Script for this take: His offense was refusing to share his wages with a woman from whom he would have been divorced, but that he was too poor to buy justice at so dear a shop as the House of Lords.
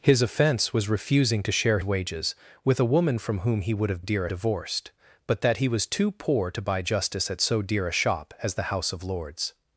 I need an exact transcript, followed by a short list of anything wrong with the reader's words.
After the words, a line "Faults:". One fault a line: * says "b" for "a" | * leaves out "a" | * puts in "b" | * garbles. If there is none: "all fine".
His offense was refusing to share wages with a woman from whom he would have dear divorced, but that he was too poor to buy justice at so dear a shop as the House of Lords.
Faults:
* leaves out "his"
* says "dear" for "been"